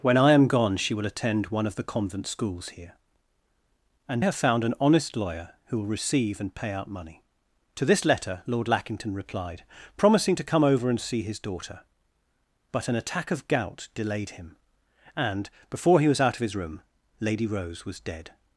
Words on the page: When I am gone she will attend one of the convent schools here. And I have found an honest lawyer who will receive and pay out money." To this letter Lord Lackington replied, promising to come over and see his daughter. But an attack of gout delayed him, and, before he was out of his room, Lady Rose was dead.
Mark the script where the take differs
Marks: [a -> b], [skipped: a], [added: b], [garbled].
When I am gone she will attend one of the convent schools here. And [skipped: I] have found an honest lawyer who will receive and pay out money." To this letter Lord Lackington replied, promising to come over and see his daughter. But an attack of gout delayed him, and, before he was out of his room, Lady Rose was dead.